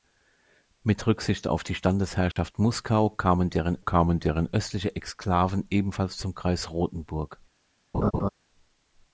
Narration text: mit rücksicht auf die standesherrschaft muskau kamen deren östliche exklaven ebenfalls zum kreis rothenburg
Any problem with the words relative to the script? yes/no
yes